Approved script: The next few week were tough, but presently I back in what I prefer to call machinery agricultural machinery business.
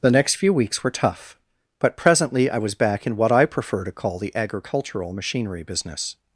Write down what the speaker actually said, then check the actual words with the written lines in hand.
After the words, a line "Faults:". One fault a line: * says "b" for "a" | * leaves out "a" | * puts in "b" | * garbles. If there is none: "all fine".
The next few weeks were tough, but presently I was back in what I prefer to call the agricultural machinery business.
Faults:
* says "weeks" for "week"
* puts in "was"
* says "the" for "machinery"